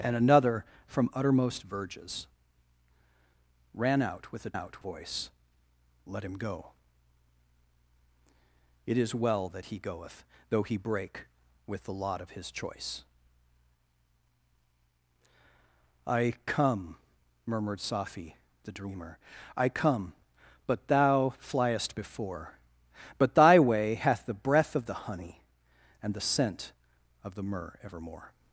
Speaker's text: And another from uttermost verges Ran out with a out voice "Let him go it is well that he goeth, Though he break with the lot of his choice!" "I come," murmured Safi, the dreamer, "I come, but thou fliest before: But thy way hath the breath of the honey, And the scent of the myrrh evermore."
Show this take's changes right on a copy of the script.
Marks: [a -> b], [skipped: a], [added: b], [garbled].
And another from uttermost verges Ran out with a out voice "Let him go it is well that he goeth, Though he break with the lot of his choice!" "I come," murmured Safi, the dreamer, "I come, but thou fliest before: But thy way hath the breath of the honey, And the scent of the myrrh evermore."